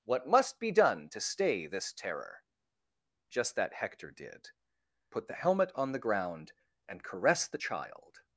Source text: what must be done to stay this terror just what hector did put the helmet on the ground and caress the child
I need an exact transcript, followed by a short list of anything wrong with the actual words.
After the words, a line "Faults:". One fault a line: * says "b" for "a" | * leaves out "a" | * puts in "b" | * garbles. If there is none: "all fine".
what must be done to stay this terror just that hector did put the helmet on the ground and caress the child
Faults:
* says "that" for "what"